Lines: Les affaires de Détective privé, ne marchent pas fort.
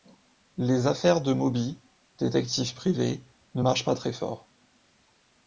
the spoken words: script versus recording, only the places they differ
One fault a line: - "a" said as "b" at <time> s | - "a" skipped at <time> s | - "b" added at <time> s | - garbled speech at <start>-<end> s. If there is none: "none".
- "Moby" added at 1.3 s
- "très" added at 3.9 s